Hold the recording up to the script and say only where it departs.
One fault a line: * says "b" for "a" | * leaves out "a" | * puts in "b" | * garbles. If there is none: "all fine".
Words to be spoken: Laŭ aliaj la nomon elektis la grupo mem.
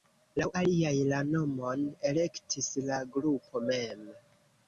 all fine